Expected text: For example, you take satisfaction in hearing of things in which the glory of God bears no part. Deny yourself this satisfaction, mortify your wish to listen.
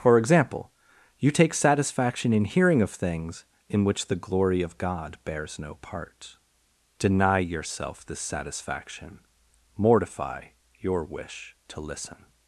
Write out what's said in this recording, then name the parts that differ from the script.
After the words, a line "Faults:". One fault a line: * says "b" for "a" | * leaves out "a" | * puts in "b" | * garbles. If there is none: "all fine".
For example, you take satisfaction in hearing of things in which the glory of God bears no part. Deny yourself this satisfaction, mortify your wish to listen.
Faults:
all fine